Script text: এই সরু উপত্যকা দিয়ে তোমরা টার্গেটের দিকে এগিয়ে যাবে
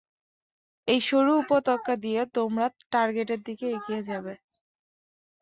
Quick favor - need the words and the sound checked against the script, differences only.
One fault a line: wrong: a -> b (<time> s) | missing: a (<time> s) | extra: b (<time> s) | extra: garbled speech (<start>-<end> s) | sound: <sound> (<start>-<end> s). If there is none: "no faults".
no faults